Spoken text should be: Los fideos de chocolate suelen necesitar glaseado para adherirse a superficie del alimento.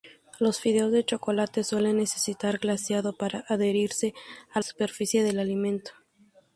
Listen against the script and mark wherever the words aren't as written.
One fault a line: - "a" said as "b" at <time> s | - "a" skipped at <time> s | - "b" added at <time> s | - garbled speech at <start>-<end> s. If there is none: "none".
none